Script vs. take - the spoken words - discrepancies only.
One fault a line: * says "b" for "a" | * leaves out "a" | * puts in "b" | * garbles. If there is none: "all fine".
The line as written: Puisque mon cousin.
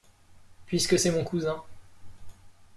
* puts in "c'est"